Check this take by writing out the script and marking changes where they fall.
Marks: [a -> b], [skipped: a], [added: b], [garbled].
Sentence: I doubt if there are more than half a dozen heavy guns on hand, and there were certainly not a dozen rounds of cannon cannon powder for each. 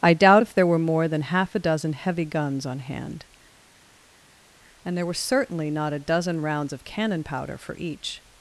I doubt if there [are -> were] more than half a dozen heavy guns on hand, and there were certainly not a dozen rounds of cannon [skipped: cannon] powder for each.